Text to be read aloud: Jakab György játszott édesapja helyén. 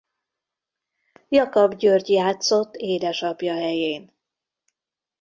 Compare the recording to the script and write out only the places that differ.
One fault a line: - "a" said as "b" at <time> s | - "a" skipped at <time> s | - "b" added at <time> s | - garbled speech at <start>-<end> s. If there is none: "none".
none